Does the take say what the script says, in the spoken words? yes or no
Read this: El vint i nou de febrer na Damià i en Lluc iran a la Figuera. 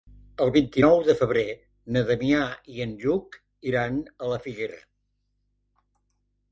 yes